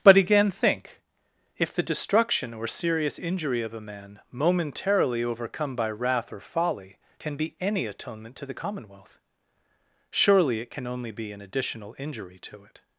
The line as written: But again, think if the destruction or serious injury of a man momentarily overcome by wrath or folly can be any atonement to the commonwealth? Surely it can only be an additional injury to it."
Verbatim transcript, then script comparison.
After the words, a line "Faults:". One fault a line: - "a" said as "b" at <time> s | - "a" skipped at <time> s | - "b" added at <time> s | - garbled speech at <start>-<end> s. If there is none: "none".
But again, think if the destruction or serious injury of a man momentarily overcome by wrath or folly can be any atonement to the commonwealth? Surely it can only be an additional injury to it."
Faults:
none